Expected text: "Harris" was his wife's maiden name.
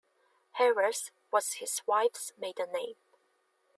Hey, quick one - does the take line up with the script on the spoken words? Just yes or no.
yes